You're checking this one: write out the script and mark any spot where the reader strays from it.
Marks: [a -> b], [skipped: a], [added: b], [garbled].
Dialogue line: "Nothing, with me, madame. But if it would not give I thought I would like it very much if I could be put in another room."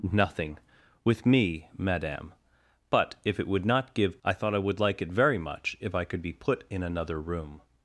"Nothing, with me, madame. But if it would not give I thought I would like it very much if I could be put in another room."